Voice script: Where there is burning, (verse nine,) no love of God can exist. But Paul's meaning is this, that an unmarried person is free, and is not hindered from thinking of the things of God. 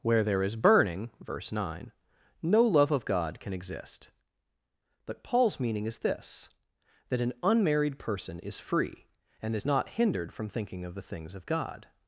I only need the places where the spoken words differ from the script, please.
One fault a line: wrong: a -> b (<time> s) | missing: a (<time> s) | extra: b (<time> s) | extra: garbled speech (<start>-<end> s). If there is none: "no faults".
no faults